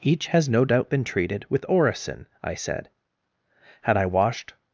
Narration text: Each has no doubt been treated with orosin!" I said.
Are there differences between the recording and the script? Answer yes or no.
yes